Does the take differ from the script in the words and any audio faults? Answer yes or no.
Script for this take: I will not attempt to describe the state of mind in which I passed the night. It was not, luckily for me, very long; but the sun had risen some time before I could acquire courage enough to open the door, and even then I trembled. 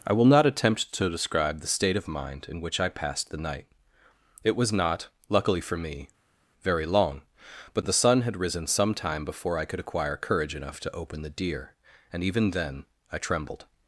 yes